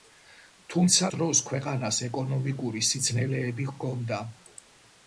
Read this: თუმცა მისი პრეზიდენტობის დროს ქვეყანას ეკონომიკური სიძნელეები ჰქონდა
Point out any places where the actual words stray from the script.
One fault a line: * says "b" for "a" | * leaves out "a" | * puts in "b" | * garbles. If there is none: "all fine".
* leaves out "მისი პრეზიდენტობის"